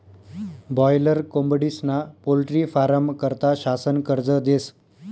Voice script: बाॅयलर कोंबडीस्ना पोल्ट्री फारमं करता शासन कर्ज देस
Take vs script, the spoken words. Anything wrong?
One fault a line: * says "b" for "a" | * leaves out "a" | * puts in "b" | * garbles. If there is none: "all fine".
all fine